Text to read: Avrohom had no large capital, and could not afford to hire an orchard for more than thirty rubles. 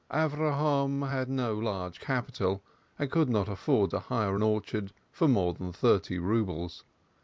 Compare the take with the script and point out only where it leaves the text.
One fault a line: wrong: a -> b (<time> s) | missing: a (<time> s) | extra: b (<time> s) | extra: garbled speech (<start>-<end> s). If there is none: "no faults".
no faults